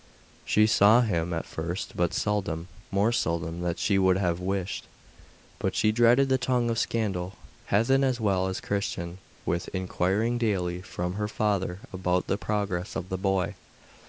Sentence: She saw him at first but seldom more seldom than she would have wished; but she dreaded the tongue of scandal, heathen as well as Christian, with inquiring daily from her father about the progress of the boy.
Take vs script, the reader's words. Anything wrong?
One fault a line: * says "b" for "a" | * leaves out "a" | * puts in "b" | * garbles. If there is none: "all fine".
all fine